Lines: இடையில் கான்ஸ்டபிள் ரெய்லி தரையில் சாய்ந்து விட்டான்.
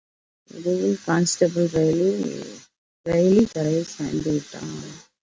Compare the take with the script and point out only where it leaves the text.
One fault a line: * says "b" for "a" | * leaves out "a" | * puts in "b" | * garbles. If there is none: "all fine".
all fine